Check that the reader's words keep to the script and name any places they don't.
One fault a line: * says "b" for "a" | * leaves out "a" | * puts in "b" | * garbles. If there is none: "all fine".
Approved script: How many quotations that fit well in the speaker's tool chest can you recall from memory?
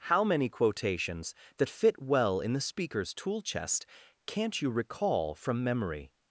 * says "can't" for "can"